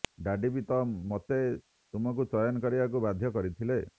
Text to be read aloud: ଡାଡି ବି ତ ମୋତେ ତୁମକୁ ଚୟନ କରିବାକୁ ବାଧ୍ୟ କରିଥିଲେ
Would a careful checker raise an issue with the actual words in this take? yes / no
no